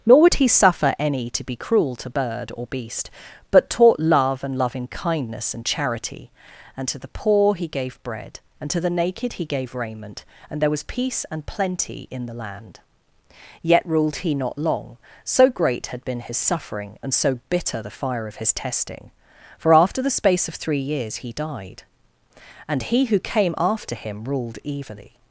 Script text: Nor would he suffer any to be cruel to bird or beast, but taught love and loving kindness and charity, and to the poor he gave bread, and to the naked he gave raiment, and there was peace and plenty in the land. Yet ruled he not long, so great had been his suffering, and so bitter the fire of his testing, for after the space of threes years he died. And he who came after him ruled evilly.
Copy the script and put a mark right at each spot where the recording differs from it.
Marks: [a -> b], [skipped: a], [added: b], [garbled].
Nor would he suffer any to be cruel to bird or beast, but taught love and loving kindness and charity, and to the poor he gave bread, and to the naked he gave raiment, and there was peace and plenty in the land. Yet ruled he not long, so great had been his suffering, and so bitter the fire of his testing, for after the space of [threes -> three] years he died. And he who came after him ruled evilly.